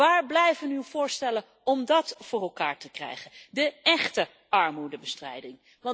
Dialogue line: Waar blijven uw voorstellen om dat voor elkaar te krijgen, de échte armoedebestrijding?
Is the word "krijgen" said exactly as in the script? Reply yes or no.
yes